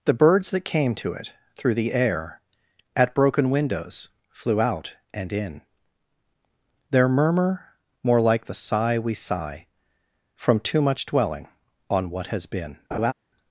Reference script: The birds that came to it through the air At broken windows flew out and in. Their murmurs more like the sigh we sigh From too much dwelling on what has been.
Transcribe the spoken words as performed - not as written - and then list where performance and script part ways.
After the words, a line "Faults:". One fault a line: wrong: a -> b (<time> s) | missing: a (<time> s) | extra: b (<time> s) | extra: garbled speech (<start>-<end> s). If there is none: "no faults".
The birds that came to it through the air At broken windows flew out and in. Their murmur more like the sigh we sigh From too much dwelling on what has been.
Faults:
wrong: murmurs -> murmur (7.1 s)